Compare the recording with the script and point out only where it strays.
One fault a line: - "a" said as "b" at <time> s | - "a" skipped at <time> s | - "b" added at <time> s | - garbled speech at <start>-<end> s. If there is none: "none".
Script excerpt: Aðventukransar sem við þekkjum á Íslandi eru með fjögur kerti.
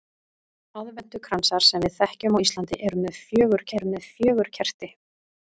- "eru með fjögur" added at 3.8 s